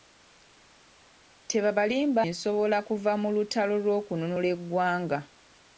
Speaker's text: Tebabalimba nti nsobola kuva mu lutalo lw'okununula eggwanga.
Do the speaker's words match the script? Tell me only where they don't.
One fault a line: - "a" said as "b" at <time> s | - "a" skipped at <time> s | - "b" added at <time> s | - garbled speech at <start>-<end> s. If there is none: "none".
- "nti" skipped at 2.2 s